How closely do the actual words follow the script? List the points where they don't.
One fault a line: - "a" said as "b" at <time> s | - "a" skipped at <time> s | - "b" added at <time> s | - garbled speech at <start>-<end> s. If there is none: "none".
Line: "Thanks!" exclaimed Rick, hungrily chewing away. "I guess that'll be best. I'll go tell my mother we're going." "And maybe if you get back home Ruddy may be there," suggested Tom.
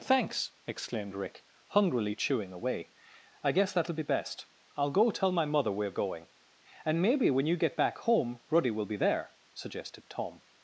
- "if" said as "when" at 7.3 s
- "may" said as "will" at 8.7 s